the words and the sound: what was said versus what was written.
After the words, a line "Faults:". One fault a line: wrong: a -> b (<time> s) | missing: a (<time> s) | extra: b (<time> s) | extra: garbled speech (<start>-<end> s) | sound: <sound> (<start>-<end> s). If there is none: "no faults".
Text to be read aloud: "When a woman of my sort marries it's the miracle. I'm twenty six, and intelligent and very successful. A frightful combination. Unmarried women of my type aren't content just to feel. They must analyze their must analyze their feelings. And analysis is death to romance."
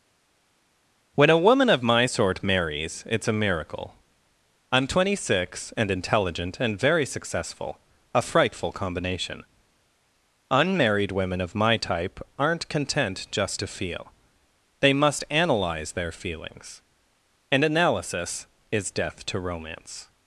"When a woman of my sort marries it's a miracle. I'm twenty six, and intelligent and very successful. A frightful combination. Unmarried women of my type aren't content just to feel. They must analyze their feelings. And analysis is death to romance."
Faults:
wrong: the -> a (3.3 s)
missing: must analyze their (16.1 s)